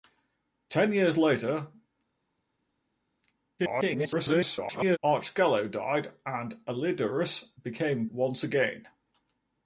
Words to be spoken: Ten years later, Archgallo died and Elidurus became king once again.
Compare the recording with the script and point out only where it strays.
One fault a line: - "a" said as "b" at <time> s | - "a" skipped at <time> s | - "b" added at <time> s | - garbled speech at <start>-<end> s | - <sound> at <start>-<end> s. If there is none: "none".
- garbled speech at 3.6-5.0 s
- "king" skipped at 8.1 s